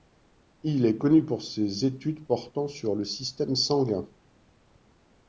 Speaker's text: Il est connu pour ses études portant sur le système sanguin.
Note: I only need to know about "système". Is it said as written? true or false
true